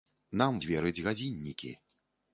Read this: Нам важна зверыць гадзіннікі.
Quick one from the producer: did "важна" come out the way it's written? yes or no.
no